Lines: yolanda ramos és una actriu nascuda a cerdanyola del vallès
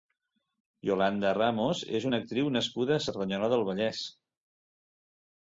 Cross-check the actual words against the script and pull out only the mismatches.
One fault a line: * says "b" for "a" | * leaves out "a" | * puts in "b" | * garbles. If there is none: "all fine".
all fine